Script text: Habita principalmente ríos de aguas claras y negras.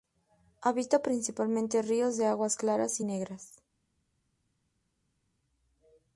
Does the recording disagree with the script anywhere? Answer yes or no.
no